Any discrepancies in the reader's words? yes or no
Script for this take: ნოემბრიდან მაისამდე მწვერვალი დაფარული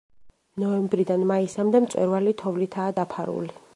yes